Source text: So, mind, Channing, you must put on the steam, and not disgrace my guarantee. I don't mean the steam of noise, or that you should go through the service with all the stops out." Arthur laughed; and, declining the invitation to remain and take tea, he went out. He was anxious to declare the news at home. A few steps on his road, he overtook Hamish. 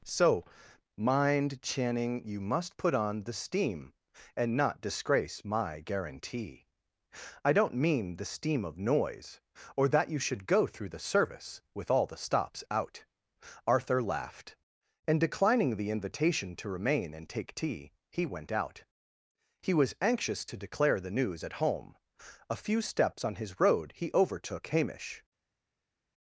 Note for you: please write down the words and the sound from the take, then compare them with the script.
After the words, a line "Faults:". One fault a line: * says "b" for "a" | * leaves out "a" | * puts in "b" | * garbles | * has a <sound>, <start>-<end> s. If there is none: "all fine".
So, mind, Channing, you must put on the steam, and not disgrace my guarantee. I don't mean the steam of noise, or that you should go through the service with all the stops out." Arthur laughed; and, declining the invitation to remain and take tea, he went out. He was anxious to declare the news at home. A few steps on his road, he overtook Hamish.
Faults:
all fine